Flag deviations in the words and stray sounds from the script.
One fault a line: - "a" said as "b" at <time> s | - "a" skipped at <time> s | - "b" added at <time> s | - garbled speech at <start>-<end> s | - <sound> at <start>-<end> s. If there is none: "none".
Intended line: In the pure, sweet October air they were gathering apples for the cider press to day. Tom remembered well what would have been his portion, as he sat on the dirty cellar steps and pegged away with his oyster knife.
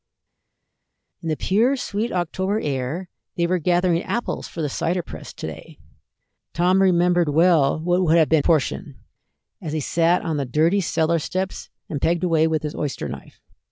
- "his" skipped at 8.4 s